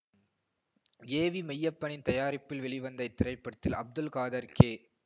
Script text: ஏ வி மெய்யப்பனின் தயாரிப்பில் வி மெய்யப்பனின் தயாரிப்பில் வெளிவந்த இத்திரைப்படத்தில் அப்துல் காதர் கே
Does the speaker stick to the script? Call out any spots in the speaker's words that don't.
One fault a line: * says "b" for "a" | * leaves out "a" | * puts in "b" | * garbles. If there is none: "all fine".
* leaves out "வி மெய்யப்பனின் தயாரிப்பில்"